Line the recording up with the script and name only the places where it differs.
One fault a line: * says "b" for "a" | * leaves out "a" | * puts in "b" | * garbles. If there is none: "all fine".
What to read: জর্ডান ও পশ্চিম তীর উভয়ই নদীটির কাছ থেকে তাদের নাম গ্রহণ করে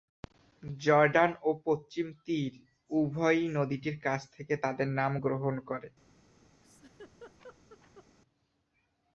all fine